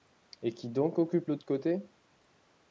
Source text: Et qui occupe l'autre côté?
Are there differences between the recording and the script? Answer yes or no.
yes